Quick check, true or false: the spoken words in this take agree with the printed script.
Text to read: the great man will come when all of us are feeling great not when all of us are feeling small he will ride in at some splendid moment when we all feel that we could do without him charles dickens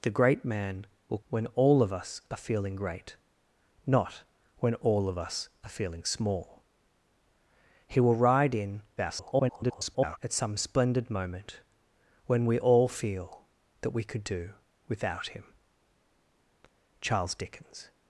false